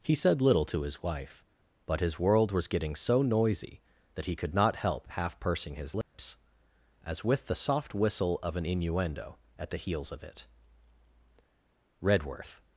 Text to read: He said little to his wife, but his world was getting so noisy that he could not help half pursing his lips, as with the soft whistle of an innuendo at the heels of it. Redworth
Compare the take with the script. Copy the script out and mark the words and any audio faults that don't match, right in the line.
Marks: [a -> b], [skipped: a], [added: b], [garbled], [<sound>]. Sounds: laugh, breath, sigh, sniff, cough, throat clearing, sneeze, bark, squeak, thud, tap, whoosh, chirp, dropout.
He said little to his wife, but his world was getting so noisy that he could not help half pursing his lips, [dropout] as with the soft whistle of an innuendo at the heels of it. Redworth